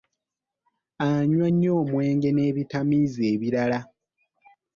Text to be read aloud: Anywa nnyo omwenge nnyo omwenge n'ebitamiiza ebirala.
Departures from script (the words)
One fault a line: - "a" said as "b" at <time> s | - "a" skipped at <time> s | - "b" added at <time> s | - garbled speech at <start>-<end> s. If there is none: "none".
- "nnyo omwenge" skipped at 2.3 s